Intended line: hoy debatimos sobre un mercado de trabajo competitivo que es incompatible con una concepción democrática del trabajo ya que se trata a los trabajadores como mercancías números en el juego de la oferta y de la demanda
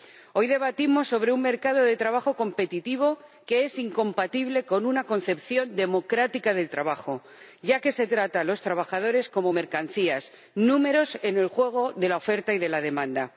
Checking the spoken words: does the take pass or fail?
pass